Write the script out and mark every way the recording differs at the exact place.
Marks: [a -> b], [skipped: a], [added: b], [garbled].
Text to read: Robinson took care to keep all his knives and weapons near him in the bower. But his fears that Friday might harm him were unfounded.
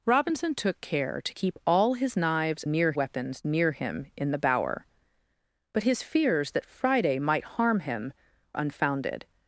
Robinson took care to keep all his knives [and -> near] weapons near him in the bower. But his fears that Friday might harm him [skipped: were] unfounded.